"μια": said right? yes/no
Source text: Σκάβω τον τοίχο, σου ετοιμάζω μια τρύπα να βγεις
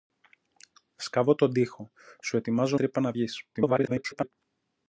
no